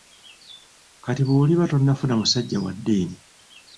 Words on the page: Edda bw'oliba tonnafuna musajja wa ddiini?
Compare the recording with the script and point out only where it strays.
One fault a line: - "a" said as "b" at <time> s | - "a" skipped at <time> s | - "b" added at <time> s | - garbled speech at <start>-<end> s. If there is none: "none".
- "Edda" said as "Kati" at 1.0 s